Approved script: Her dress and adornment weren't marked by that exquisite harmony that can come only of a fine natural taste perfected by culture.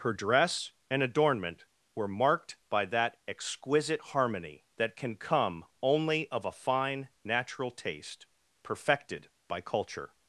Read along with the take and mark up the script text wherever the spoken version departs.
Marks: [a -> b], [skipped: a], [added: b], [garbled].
Her dress and adornment [weren't -> were] marked by that exquisite harmony that can come only of a fine natural taste perfected by culture.